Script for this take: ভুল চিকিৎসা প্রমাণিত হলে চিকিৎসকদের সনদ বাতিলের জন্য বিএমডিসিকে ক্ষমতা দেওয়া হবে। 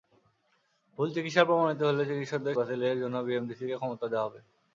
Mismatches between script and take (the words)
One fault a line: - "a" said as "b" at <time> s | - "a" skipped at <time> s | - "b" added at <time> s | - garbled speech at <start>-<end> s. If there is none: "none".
- "সনদ" skipped at 2.5 s